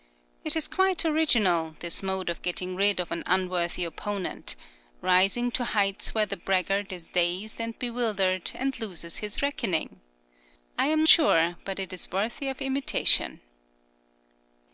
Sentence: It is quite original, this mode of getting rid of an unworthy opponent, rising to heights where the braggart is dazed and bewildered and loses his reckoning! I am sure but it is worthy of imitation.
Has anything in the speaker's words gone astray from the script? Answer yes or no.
no